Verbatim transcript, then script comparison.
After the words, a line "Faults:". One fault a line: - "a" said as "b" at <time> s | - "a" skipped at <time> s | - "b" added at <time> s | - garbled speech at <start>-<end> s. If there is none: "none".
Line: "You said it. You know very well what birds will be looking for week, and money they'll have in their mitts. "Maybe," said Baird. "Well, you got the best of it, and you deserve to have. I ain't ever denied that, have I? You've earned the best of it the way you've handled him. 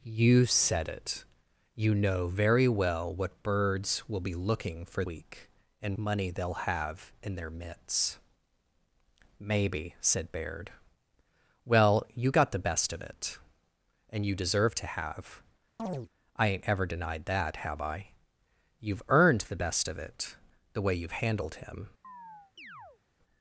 "You said it. You know very well what birds will be looking for week, and money they'll have in their mitts. "Maybe," said Baird. "Well, you got the best of it, and you deserve to have. I ain't ever denied that, have I? You've earned the best of it the way you've handled him.
Faults:
none